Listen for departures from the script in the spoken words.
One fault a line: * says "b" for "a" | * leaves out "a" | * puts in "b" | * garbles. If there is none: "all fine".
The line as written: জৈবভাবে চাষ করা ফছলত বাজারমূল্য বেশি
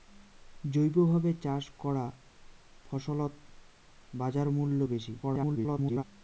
* garbles